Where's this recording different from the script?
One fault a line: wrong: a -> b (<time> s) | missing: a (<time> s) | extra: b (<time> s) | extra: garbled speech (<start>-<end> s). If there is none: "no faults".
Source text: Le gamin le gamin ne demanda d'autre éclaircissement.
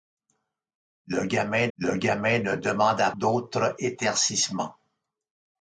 no faults